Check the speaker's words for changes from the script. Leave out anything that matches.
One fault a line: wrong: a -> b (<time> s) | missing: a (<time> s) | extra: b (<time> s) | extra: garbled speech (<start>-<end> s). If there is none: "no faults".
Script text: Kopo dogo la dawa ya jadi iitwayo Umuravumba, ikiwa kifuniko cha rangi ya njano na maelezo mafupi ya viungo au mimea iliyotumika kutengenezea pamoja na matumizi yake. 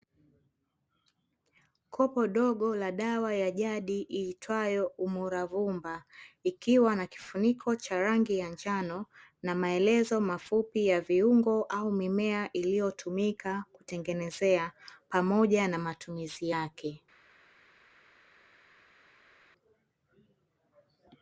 extra: na (7.0 s)